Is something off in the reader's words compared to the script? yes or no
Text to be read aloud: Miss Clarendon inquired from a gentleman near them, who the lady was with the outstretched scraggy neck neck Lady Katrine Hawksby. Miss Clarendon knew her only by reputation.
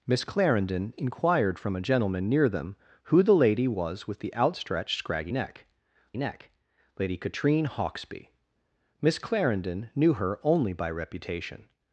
no